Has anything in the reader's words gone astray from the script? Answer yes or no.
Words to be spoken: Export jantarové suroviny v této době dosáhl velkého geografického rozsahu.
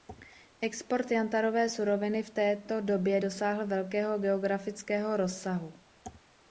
no